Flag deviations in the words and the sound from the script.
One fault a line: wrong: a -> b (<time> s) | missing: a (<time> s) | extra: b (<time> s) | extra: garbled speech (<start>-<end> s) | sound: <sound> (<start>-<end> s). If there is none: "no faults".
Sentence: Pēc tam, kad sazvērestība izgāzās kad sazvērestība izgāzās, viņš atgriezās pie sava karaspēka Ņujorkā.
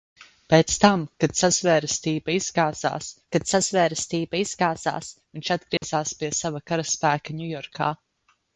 sound: dropout (5.8-5.8 s)